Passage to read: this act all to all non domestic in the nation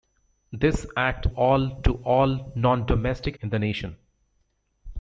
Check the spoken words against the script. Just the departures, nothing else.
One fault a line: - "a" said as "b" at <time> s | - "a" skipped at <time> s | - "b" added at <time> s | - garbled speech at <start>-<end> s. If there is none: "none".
none